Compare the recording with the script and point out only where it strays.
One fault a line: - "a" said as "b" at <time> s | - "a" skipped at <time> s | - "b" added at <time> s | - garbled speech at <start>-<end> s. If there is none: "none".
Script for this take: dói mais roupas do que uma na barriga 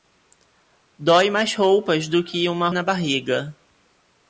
none